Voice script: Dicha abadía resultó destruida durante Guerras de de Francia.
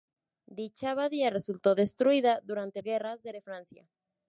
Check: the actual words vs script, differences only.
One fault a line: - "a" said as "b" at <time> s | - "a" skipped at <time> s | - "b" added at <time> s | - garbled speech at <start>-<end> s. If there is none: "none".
none